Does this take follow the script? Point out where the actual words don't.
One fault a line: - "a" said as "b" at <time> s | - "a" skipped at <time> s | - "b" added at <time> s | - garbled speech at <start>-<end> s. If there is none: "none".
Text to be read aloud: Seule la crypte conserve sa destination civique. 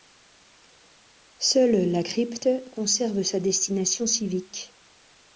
none